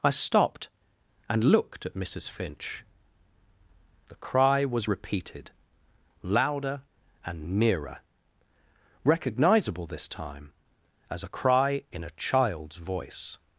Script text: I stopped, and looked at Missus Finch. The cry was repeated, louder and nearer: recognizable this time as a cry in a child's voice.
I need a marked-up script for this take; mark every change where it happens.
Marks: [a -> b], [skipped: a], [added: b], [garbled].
I stopped, and looked at Missus Finch. The cry was repeated, louder and nearer: recognizable this time as a cry in a child's voice.